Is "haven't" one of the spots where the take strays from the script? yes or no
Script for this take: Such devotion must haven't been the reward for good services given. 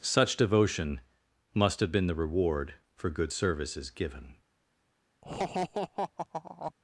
yes